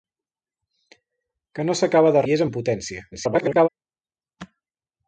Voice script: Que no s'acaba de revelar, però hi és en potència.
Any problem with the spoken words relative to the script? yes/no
yes